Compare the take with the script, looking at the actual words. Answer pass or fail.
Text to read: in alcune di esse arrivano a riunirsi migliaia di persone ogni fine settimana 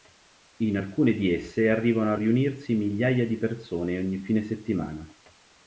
pass